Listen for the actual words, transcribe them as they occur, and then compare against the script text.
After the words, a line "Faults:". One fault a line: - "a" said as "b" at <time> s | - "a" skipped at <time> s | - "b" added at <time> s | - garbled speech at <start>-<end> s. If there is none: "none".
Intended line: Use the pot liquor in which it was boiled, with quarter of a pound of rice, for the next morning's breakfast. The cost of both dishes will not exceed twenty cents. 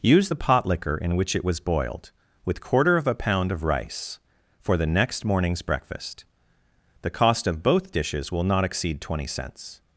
Use the pot liquor in which it was boiled, with quarter of a pound of rice, for the next morning's breakfast. The cost of both dishes will not exceed twenty cents.
Faults:
none